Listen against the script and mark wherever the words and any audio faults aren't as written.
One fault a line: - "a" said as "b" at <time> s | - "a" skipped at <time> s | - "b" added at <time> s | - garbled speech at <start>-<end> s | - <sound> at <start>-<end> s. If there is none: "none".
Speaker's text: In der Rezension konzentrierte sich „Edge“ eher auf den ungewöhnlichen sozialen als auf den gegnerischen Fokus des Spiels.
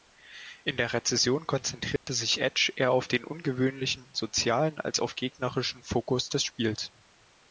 - dropout at 2.0-2.1 s
- "den" skipped at 5.1 s